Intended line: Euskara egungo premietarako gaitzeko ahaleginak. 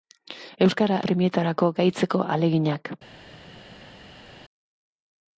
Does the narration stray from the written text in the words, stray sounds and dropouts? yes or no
yes